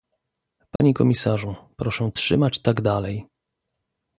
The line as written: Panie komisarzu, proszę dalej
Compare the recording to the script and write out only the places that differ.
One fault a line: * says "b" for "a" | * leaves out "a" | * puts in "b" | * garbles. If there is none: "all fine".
* puts in "trzymać tak"